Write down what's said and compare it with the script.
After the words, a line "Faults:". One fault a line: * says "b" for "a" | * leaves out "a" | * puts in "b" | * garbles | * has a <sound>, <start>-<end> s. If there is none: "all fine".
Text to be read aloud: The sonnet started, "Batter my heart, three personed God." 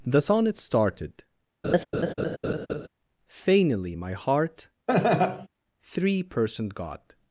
The sonnet started, "Fainily my heart, three personed God."
Faults:
* has a laugh, 1.6-2.9 s
* says "Fainily" for "Batter"
* has a laugh, 4.9-5.5 s